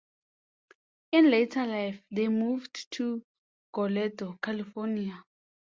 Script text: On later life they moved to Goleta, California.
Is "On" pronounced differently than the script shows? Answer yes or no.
yes